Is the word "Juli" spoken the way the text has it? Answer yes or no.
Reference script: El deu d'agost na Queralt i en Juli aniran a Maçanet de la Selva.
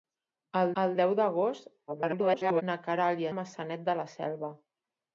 no